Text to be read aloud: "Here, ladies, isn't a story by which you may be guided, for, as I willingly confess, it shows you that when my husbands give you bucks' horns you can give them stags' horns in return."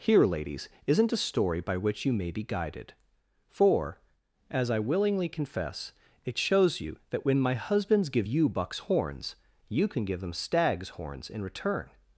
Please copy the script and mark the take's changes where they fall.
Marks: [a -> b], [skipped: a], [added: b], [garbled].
"Here, ladies, isn't a story by which you may be guided, for, as I willingly confess, it shows you that when my husbands give you bucks' horns you can give them stags' horns in return."